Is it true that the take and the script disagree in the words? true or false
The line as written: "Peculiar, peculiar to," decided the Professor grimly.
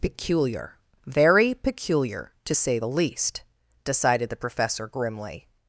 true